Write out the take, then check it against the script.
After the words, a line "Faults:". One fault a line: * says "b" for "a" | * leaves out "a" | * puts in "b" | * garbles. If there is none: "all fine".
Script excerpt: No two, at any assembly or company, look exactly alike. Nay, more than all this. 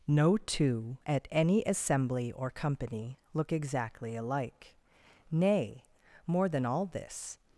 No two, at any assembly or company, look exactly alike. Nay, more than all this.
Faults:
all fine